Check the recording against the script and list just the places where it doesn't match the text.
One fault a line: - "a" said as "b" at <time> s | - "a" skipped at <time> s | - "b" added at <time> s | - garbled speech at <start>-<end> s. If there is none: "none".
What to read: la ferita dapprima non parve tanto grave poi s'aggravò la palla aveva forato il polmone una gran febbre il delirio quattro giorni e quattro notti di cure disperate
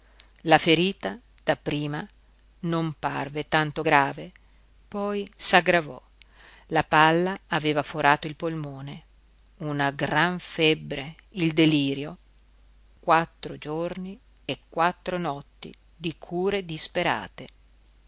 none